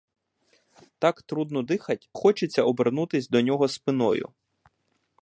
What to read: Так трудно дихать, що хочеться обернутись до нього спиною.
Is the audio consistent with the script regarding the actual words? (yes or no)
no